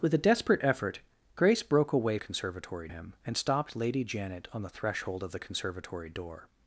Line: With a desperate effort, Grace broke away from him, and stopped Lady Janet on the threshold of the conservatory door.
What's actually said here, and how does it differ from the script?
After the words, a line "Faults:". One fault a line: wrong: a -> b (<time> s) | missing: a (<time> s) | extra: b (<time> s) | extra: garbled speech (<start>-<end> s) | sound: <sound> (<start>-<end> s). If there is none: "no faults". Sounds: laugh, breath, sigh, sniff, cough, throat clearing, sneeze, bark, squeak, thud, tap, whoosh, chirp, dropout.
With a desperate effort, Grace broke away conservatory him, and stopped Lady Janet on the threshold of the conservatory door.
Faults:
wrong: from -> conservatory (2.2 s)